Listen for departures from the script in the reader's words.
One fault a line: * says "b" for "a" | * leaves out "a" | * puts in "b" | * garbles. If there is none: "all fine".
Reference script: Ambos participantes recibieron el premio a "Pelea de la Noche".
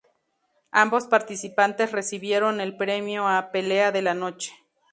all fine